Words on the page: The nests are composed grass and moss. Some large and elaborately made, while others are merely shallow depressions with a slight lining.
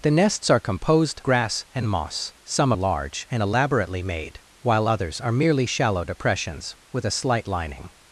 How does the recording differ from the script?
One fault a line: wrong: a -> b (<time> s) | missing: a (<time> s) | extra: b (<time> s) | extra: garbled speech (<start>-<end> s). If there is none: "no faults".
no faults